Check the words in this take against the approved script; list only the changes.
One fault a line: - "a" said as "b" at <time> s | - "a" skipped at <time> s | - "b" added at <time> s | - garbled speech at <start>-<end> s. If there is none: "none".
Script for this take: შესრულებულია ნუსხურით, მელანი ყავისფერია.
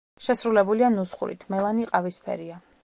none